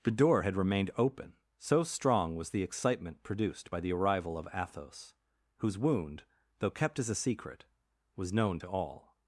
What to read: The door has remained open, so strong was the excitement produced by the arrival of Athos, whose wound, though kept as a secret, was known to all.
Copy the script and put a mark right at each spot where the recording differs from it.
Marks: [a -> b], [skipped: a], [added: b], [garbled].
The door [has -> had] remained open, so strong was the excitement produced by the arrival of Athos, whose wound, though kept as a secret, was known to all.